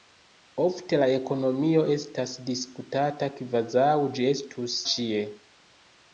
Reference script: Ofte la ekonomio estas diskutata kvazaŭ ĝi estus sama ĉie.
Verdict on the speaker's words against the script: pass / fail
fail